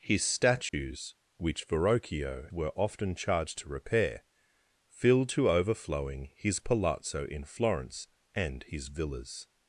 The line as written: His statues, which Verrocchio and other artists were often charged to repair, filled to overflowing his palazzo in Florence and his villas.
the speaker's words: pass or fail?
fail